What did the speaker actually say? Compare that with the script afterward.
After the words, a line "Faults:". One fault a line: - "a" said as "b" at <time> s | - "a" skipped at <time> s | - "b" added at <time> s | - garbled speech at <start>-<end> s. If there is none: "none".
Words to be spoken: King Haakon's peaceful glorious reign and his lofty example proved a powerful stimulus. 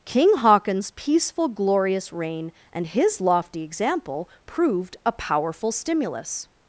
King Haakon's peaceful glorious reign and his lofty example proved a powerful stimulus.
Faults:
none